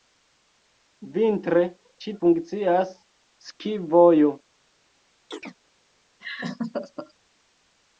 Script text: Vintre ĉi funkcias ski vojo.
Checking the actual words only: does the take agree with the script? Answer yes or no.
yes